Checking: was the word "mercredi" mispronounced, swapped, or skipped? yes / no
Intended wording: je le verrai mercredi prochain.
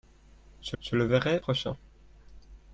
yes